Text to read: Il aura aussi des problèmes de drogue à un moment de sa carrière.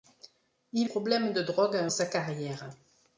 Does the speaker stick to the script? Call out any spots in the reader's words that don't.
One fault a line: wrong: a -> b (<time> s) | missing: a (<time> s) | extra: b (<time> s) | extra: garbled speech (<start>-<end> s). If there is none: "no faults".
missing: aura aussi des (0.9 s)
missing: moment de (1.9 s)